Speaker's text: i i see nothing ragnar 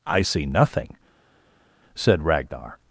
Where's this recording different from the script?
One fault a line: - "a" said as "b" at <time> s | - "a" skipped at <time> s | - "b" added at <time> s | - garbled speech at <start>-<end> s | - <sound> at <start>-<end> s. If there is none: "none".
- "i" skipped at 0.2 s
- "said" added at 2.0 s